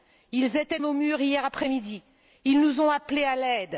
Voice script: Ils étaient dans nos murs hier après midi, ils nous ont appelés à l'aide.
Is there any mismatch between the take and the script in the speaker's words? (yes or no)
yes